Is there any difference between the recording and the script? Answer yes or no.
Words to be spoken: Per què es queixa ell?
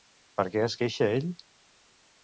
no